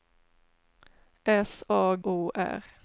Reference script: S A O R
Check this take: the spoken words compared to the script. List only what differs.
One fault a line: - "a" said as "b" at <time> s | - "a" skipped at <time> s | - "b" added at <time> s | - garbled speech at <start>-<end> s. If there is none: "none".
none